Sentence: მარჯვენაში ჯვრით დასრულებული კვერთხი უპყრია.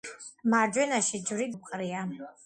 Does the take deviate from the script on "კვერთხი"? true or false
true